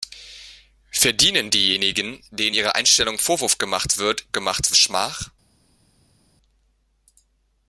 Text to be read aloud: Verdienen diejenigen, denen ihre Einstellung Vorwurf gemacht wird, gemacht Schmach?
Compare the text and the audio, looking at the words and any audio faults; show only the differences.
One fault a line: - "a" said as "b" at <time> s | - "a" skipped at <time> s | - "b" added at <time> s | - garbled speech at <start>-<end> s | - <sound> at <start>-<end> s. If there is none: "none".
none